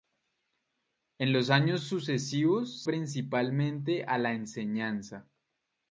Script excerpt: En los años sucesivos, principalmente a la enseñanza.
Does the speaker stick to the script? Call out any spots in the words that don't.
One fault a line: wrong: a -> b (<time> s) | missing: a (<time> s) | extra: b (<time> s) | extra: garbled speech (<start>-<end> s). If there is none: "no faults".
no faults